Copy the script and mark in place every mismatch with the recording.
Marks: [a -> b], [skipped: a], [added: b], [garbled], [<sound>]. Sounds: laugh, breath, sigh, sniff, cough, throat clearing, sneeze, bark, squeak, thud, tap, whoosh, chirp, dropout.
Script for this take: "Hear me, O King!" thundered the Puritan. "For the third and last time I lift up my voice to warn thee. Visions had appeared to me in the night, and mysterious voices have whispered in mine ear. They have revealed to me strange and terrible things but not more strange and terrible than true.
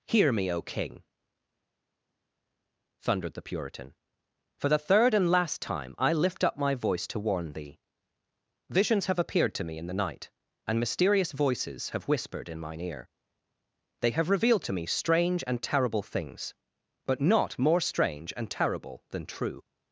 "Hear me, O King!" thundered the Puritan. "For the third and last time I lift up my voice to warn thee. Visions [had -> have] appeared to me in the night, and mysterious voices have whispered in mine ear. They have revealed to me strange and terrible things but not more strange and terrible than true.